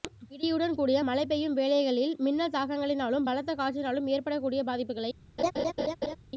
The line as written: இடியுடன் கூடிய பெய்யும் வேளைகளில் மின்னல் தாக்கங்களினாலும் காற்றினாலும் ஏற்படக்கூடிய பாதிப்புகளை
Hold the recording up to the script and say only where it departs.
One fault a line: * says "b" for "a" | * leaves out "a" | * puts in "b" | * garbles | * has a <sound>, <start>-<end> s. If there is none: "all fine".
* puts in "மழை"
* puts in "பலத்த"
* has a laugh, 5.4-6.2 s